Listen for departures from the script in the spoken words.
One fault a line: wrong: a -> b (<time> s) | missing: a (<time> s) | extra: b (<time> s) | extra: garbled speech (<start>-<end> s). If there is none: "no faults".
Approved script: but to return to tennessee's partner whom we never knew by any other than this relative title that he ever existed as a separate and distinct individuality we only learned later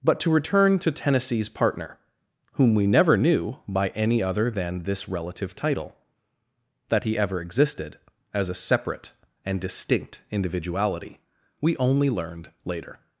no faults